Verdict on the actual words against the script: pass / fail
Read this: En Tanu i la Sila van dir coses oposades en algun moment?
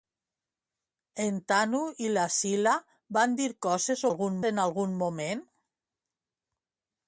fail